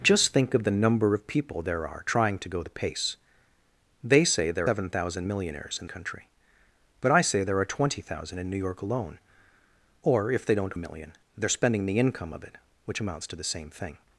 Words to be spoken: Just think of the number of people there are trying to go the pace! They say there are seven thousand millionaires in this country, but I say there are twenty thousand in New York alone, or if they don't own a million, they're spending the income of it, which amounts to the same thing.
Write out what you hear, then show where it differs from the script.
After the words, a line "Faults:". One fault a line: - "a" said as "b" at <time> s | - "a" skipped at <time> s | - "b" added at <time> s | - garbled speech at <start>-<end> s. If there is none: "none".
Just think of the number of people there are trying to go the pace! They say there seven thousand millionaires in country, but I say there are twenty thousand in New York alone, or if they don't a million, they're spending the income of it, which amounts to the same thing.
Faults:
- "are" skipped at 4.7 s
- "this" skipped at 5.8 s
- "own" skipped at 10.7 s